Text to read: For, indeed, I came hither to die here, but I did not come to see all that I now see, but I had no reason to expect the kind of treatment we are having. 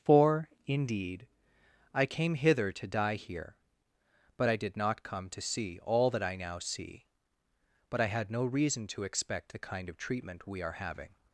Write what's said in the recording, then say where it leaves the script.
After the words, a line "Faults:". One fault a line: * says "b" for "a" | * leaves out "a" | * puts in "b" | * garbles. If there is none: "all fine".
For, indeed, I came hither to die here, but I did not come to see all that I now see, but I had no reason to expect the kind of treatment we are having.
Faults:
all fine